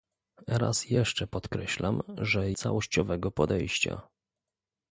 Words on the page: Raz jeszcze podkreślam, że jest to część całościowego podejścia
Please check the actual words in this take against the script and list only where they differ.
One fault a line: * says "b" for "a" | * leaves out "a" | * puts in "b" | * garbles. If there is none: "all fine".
* leaves out "jest to część"